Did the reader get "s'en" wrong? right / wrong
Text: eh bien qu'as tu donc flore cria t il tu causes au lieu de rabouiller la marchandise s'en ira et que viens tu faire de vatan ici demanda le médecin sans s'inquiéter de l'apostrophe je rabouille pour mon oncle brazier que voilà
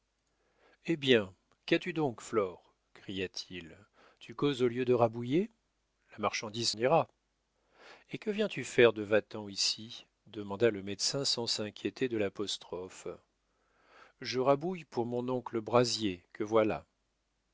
wrong